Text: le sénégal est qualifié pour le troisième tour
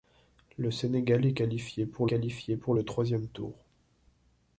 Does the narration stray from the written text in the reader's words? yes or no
yes